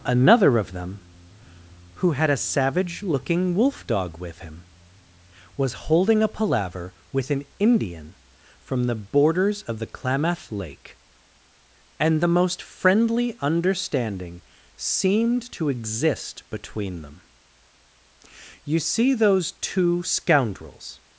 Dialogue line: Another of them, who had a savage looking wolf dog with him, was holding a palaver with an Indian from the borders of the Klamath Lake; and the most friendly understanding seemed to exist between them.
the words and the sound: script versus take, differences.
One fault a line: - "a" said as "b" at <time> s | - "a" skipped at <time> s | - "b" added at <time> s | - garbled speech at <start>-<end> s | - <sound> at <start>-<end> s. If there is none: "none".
- "You see those two scoundrels" added at 18.6 s